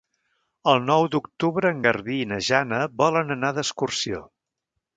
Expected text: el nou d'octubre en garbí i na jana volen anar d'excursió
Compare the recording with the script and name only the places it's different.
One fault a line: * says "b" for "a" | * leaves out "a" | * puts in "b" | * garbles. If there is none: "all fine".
all fine